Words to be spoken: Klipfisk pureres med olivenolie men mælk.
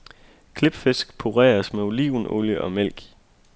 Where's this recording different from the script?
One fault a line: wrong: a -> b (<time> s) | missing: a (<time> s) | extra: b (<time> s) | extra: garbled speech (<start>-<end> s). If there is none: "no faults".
wrong: men -> og (2.6 s)